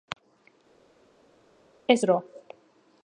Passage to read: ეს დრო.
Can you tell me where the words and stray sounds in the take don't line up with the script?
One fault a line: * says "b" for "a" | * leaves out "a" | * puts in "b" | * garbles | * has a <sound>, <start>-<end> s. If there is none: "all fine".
all fine